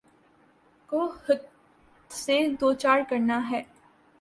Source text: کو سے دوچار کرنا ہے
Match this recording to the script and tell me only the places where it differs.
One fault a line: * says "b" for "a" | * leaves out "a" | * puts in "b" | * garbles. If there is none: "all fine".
all fine